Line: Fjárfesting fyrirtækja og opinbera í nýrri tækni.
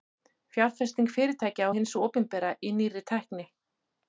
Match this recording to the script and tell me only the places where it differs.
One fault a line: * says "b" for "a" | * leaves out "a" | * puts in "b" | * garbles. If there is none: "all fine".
* puts in "hins"